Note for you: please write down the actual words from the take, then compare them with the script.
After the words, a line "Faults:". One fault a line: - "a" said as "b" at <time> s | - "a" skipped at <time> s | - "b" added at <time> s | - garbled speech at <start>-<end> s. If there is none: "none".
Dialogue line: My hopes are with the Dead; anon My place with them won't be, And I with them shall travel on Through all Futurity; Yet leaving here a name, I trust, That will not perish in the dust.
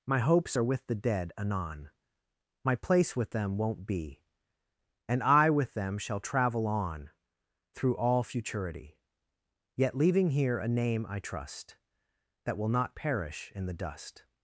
My hopes are with the Dead; anon My place with them won't be, And I with them shall travel on Through all Futurity; Yet leaving here a name, I trust, That will not perish in the dust.
Faults:
none